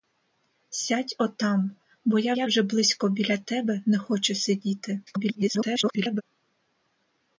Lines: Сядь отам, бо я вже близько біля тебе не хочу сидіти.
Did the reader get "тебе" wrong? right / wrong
right